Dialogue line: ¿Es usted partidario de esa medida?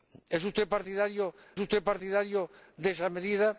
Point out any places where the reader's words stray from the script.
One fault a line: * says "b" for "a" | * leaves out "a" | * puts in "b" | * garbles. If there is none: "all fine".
* puts in "usted partidario"